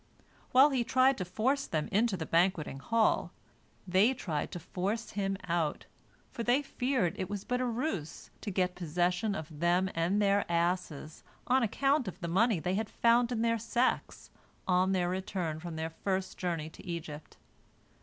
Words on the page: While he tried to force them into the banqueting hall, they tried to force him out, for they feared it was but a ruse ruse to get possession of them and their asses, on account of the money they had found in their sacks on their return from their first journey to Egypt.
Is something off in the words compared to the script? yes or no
yes